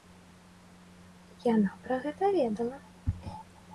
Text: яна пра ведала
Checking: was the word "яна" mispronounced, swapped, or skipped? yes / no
no